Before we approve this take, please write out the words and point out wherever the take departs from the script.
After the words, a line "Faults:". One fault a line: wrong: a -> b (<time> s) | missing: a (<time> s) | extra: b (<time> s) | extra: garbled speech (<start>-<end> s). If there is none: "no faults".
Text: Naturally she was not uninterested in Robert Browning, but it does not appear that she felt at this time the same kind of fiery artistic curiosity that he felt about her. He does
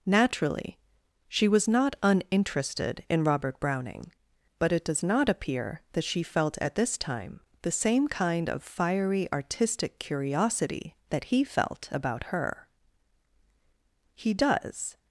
Naturally she was not uninterested in Robert Browning, but it does not appear that she felt at this time the same kind of fiery artistic curiosity that he felt about her. He does
Faults:
no faults